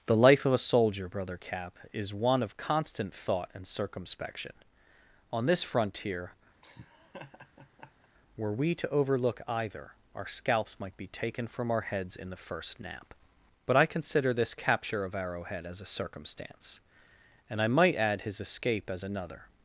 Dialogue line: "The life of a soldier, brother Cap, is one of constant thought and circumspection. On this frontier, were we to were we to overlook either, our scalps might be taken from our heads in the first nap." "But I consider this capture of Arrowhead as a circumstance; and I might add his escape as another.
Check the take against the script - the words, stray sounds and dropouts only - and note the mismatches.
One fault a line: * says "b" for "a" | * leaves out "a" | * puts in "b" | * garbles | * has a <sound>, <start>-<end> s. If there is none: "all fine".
* has a laugh, 6.6-8.1 s
* leaves out "were we to"